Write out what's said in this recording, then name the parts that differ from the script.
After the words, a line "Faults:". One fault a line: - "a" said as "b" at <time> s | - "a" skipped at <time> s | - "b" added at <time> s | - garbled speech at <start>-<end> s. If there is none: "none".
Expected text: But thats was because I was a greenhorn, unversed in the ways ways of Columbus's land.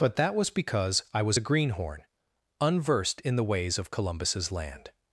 But that was because I was a greenhorn, unversed in the ways of Columbus's land.
Faults:
- "thats" said as "that" at 0.1 s
- "ways" skipped at 3.8 s